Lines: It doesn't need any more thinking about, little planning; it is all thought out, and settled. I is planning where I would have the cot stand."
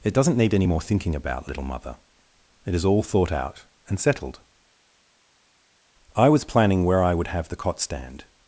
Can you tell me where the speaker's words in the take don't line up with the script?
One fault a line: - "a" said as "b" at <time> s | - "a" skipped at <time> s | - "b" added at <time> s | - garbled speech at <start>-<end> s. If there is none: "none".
- "planning" said as "mother" at 1.6 s
- "is" said as "was" at 6.3 s